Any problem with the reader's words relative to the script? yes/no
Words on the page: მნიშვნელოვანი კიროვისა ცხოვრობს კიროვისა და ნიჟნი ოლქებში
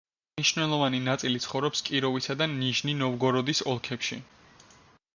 yes